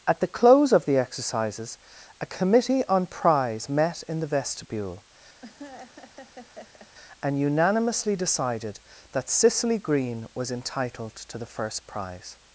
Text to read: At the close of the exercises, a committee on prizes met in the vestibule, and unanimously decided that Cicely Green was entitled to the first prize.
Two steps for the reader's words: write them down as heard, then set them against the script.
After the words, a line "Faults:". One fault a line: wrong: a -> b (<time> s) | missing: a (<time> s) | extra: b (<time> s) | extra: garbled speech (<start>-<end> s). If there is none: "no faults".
At the close of the exercises, a committee on prize met in the vestibule, and unanimously decided that Cicely Green was entitled to the first prize.
Faults:
wrong: prizes -> prize (3.0 s)